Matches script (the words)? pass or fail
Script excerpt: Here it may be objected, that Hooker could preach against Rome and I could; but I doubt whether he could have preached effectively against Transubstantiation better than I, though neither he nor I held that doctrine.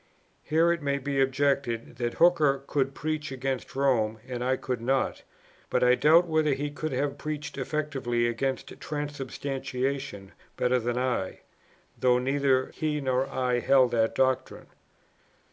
fail